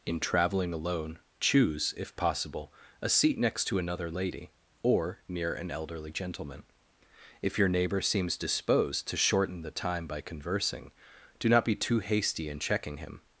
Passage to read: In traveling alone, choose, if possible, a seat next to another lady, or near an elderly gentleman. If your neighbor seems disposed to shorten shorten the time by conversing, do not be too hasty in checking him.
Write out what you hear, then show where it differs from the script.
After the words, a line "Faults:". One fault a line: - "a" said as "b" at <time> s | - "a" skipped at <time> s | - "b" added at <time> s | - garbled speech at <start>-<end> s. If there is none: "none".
In traveling alone, choose, if possible, a seat next to another lady, or near an elderly gentleman. If your neighbor seems disposed to shorten the time by conversing, do not be too hasty in checking him.
Faults:
- "shorten" skipped at 9.6 s